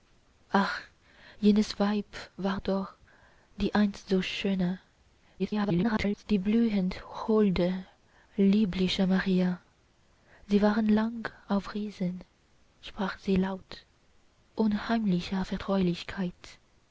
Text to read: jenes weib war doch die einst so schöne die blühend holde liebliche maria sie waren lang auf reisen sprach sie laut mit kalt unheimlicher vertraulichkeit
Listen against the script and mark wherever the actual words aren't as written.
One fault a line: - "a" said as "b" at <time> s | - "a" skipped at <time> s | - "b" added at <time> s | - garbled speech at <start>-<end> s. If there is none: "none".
- garbled speech at 5.4-6.2 s
- "mit kalt" skipped at 13.9 s